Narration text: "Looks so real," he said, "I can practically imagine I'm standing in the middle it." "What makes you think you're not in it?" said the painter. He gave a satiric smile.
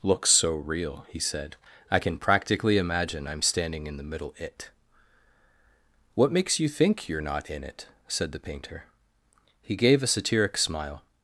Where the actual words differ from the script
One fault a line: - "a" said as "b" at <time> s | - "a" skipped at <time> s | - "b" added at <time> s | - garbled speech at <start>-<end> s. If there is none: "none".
none